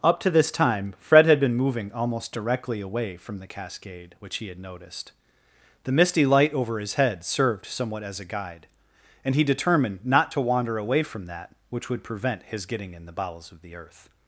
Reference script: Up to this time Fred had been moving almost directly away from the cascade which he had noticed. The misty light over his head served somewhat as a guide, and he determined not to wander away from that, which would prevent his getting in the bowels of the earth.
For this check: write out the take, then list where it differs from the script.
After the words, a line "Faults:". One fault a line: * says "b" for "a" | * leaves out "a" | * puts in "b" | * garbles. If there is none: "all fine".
Up to this time Fred had been moving almost directly away from the cascade which he had noticed. The misty light over his head served somewhat as a guide, and he determined not to wander away from that, which would prevent his getting in the bowels of the earth.
Faults:
all fine